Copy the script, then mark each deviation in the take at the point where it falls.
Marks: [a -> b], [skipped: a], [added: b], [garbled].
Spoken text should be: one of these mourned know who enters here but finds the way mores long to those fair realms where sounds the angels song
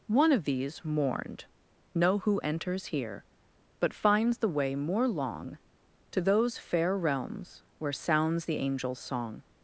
one of these mourned know who enters here but finds the way [mores -> more] long to those fair realms where sounds the angels song